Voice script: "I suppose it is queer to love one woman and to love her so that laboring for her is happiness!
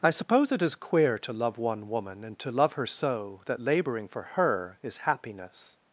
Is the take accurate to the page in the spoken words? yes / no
yes